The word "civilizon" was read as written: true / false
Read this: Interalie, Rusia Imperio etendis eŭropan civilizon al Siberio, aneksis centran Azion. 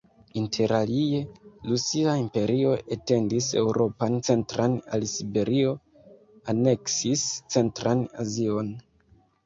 false